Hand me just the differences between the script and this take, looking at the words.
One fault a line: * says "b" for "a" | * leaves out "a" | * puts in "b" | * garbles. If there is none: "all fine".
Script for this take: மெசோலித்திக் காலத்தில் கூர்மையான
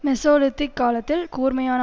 all fine